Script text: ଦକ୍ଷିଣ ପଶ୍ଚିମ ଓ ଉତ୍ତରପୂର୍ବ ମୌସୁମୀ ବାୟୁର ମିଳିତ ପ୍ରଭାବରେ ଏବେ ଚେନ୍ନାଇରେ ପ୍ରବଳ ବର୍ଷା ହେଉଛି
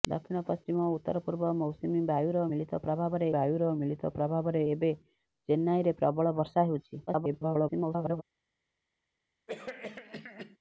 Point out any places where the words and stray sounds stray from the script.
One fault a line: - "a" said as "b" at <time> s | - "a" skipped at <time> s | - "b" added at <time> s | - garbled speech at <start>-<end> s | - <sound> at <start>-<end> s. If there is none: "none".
- "ବାୟୁର ମିଳିତ ପ୍ରଭାବରେ" added at 3.3 s
- garbled speech at 7.1-8.2 s
- cough at 9.5-10.6 s